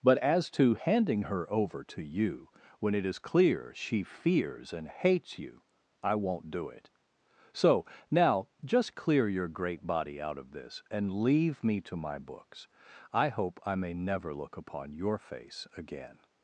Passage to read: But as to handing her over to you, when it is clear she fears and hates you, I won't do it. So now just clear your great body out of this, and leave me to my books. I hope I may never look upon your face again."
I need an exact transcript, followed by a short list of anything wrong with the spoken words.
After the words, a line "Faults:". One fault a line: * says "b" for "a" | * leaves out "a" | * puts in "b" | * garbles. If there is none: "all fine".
But as to handing her over to you, when it is clear she fears and hates you, I won't do it. So now just clear your great body out of this, and leave me to my books. I hope I may never look upon your face again."
Faults:
all fine